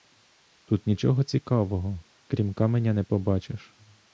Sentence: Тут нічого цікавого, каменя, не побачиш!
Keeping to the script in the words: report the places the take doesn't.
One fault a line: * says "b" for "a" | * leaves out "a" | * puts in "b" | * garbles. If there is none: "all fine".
* puts in "крім"